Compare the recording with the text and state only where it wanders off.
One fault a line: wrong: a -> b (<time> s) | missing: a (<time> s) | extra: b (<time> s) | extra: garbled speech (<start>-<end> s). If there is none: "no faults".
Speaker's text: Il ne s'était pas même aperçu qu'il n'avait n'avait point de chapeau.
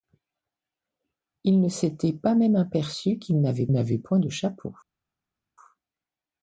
no faults